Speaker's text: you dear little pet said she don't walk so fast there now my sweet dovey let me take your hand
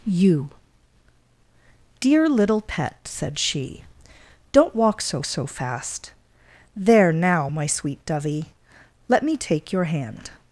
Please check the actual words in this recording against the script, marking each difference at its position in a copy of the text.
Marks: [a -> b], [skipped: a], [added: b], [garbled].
you dear little pet said she don't walk so [added: so] fast there now my sweet dovey let me take your hand